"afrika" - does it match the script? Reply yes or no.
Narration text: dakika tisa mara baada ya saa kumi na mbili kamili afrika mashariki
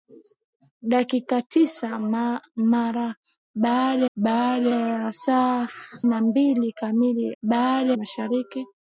no